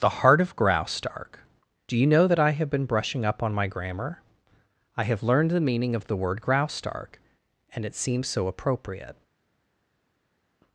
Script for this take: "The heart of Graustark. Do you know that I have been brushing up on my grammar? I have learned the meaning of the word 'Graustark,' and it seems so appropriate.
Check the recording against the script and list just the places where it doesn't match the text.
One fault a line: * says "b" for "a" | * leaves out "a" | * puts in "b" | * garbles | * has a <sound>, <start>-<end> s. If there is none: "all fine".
all fine